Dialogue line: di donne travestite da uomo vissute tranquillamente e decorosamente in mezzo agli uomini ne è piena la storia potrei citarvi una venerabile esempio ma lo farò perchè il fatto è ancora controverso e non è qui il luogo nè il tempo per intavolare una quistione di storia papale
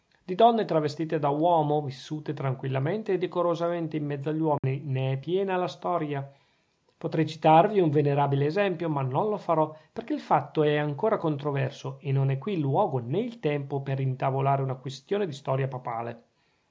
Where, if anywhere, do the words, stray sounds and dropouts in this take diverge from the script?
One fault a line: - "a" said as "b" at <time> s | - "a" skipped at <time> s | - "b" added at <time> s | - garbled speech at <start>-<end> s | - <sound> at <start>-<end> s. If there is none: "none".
- dropout at 4.6-4.6 s
- "una" said as "un" at 7.8 s
- "non" added at 9.0 s